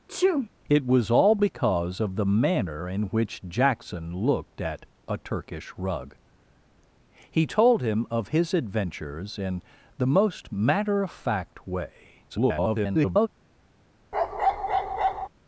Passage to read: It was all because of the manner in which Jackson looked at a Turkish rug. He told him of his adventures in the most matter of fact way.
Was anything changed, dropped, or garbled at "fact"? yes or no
no